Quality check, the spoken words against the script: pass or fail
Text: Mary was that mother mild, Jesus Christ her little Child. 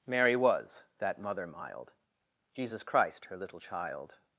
pass